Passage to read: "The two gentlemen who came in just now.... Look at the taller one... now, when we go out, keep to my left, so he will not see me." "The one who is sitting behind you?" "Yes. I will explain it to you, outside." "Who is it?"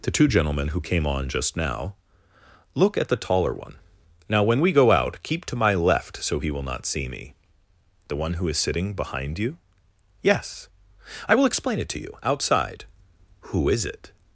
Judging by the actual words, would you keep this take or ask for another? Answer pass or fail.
fail